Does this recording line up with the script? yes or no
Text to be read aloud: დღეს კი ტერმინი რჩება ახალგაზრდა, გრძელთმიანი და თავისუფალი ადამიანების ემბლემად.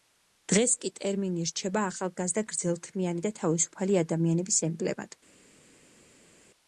yes